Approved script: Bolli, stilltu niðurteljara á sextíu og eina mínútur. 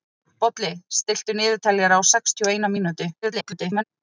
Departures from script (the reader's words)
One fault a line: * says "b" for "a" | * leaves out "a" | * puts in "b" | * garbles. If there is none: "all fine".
* garbles